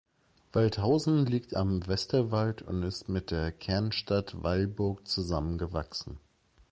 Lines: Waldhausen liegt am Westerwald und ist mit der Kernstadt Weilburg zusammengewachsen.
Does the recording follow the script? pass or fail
pass